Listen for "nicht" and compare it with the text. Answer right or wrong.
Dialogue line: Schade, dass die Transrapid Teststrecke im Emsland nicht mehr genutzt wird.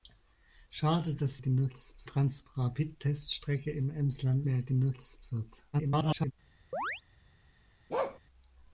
wrong